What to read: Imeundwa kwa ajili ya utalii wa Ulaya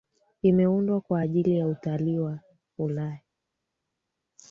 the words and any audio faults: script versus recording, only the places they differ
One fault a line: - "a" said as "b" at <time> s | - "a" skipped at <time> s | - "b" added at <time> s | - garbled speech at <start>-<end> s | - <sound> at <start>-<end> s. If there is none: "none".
none